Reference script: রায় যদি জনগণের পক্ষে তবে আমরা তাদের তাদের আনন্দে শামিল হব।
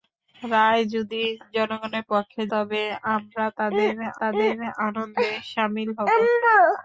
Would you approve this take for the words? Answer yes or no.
yes